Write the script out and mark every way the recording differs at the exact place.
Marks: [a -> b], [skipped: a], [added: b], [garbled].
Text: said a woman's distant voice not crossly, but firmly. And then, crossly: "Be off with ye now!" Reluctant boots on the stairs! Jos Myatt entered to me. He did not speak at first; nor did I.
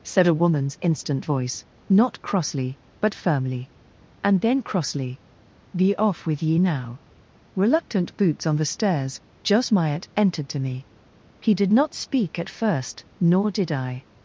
said a woman's [distant -> instant] voice not crossly, but firmly. And then, crossly: "Be off with ye now!" Reluctant boots on the stairs! Jos Myatt entered to me. He did not speak at first; nor did I.